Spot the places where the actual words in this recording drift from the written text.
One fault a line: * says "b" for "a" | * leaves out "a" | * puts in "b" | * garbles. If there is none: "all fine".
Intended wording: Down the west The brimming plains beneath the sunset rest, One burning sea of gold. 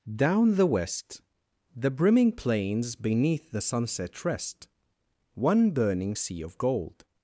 all fine